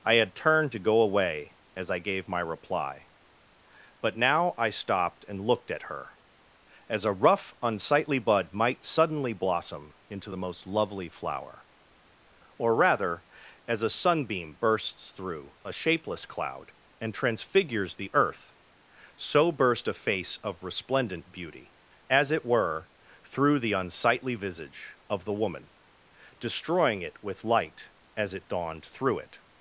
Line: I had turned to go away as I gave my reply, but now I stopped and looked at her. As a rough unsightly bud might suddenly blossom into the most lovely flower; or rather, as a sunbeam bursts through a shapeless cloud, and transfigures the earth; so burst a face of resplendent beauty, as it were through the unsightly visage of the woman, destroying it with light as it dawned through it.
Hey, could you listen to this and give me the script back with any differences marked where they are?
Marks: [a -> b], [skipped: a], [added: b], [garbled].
I had turned to go away as I gave my reply, but now I stopped and looked at her. As a rough unsightly bud might suddenly blossom into the most lovely flower; or rather, as a sunbeam bursts through a shapeless cloud, and transfigures the earth; so burst a face of resplendent beauty, as it were through the unsightly visage of the woman, destroying it with light as it dawned through it.